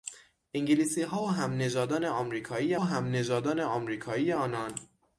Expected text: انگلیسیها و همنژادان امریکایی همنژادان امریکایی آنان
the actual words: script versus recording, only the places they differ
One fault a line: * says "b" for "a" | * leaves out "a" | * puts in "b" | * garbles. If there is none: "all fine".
all fine